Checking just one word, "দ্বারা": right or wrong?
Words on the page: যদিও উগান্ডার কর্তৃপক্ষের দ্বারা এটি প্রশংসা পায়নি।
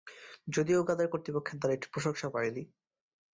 right